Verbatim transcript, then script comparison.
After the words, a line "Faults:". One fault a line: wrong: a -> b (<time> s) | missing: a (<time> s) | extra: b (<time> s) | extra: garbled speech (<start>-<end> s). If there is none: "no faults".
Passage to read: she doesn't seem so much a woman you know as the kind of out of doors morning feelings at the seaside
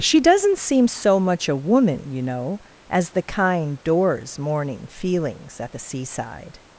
she doesn't seem so much a woman you know as the kind doors morning feelings at the seaside
Faults:
missing: of out of (3.8 s)